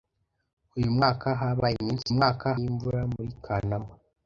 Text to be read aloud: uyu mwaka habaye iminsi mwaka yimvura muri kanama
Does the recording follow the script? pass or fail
pass